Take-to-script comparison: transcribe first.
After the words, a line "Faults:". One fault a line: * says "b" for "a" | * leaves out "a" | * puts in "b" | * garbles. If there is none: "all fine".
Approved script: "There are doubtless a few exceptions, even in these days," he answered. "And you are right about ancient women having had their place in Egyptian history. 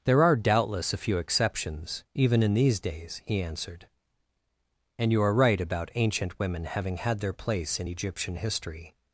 "There are doubtless a few exceptions, even in these days," he answered. "And you are right about ancient women having had their place in Egyptian history.
Faults:
all fine